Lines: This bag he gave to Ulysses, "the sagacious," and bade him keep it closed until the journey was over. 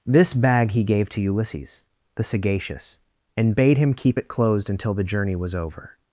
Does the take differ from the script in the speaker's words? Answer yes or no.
no